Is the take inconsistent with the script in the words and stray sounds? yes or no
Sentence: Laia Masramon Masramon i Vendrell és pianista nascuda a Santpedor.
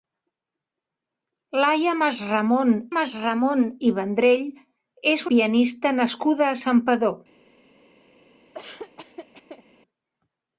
yes